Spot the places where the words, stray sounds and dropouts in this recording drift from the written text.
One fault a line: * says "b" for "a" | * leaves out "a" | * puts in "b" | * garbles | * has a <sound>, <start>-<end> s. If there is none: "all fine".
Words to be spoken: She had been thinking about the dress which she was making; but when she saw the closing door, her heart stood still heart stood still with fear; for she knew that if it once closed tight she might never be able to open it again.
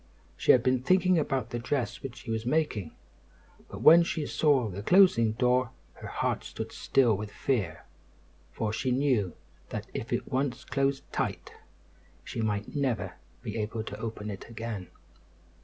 * leaves out "heart stood still"